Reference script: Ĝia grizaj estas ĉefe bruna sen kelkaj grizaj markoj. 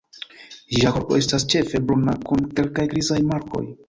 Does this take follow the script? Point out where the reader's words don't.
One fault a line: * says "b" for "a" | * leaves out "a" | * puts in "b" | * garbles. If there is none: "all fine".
* says "korpo" for "grizaj"
* says "kun" for "sen"